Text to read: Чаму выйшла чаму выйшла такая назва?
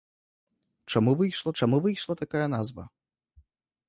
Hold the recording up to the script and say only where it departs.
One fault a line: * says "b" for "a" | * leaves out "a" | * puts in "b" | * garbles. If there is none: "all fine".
all fine